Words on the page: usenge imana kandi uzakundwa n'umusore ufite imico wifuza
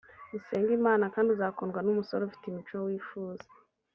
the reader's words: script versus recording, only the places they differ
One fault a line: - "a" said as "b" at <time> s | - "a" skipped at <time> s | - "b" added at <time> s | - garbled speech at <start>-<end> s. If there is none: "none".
none